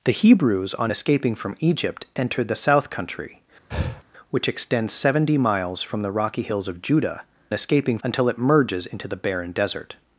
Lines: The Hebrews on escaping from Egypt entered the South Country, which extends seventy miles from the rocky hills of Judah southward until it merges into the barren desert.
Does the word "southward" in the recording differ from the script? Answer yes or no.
yes